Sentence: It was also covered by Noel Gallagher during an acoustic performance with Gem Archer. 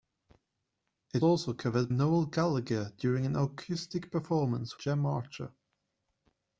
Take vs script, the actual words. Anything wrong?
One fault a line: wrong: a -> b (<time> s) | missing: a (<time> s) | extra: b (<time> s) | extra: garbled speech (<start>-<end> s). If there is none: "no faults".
missing: was (1.2 s)
missing: by (1.9 s)
missing: with (4.8 s)